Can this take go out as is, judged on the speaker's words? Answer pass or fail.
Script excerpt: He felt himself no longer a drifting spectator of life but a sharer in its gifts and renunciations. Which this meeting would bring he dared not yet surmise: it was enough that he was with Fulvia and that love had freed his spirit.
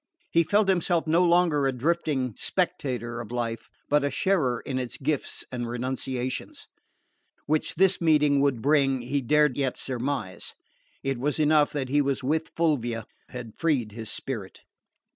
fail